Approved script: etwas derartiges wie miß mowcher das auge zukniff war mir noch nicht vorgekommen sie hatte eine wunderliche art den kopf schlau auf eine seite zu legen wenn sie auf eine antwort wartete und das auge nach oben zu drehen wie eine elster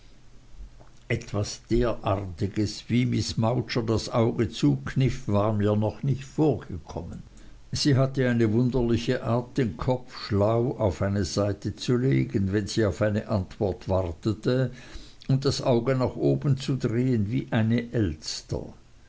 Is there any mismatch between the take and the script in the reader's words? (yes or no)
no